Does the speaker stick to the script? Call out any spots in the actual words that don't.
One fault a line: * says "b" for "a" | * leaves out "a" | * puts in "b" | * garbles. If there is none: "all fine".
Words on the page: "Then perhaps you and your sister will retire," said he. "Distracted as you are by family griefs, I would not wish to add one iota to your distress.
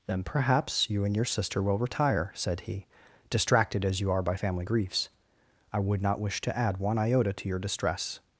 all fine